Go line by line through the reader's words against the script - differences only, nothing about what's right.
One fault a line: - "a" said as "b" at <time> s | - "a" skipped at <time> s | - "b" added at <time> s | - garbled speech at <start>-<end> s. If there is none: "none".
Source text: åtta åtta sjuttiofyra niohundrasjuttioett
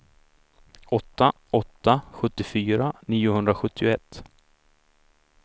none